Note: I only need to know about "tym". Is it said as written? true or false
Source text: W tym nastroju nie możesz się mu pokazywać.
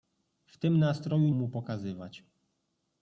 true